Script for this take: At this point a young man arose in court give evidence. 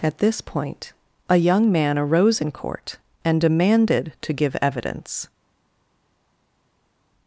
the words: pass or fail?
fail